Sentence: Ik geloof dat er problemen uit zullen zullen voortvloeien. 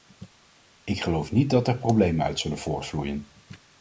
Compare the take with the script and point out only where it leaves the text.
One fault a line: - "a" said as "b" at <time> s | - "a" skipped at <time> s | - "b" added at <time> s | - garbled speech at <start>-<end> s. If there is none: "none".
- "niet" added at 1.3 s
- "zullen" skipped at 2.6 s